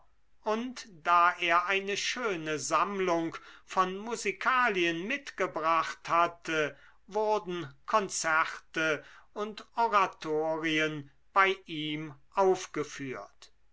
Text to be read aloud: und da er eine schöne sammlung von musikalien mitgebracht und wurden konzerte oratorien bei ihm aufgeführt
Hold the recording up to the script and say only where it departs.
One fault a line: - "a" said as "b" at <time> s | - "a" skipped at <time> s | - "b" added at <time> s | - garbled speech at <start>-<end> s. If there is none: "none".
- "und" said as "hatte" at 6.1 s
- "und" added at 9.3 s